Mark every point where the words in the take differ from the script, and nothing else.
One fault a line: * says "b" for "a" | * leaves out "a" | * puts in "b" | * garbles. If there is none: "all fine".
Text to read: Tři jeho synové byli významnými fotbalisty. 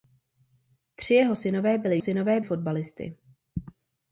* says "synové" for "významnými"